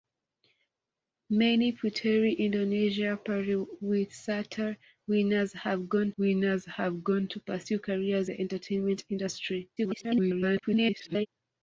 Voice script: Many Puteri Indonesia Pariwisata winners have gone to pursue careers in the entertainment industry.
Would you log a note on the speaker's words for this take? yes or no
yes